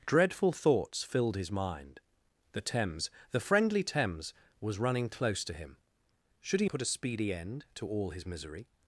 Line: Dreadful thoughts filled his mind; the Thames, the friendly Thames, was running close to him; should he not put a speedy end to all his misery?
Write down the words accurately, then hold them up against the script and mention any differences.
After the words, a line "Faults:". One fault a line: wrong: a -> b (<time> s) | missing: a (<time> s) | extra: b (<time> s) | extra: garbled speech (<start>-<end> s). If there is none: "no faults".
Dreadful thoughts filled his mind; the Thames, the friendly Thames, was running close to him; should he put a speedy end to all his misery?
Faults:
missing: not (6.7 s)